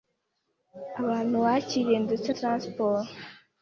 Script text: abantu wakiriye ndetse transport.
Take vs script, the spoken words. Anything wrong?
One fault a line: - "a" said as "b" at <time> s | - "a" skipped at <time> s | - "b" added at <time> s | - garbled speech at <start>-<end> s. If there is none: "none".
none